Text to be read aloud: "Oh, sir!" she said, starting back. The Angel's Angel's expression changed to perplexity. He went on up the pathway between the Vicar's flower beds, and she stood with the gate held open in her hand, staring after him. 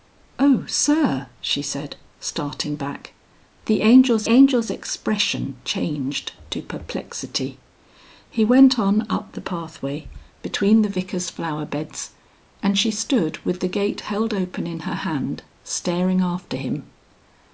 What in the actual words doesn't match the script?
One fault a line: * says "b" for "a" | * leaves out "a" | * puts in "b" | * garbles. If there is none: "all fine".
all fine